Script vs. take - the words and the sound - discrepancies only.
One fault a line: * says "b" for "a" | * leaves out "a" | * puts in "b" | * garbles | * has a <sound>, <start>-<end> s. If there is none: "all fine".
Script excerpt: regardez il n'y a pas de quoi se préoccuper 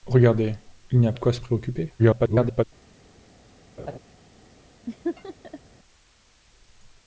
* leaves out "pas"
* garbles
* has a laugh, 3.8-4.0 s
* has a laugh, 4.9-5.6 s